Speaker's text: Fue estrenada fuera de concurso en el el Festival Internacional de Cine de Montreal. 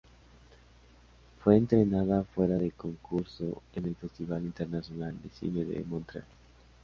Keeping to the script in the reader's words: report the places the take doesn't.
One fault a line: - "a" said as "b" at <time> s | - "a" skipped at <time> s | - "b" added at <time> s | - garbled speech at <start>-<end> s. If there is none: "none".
- "el" skipped at 4.0 s